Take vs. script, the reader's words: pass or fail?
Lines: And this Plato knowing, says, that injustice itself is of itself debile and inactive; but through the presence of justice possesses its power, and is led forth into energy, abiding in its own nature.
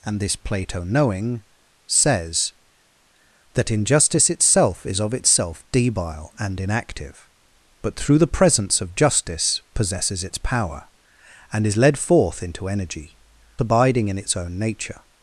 pass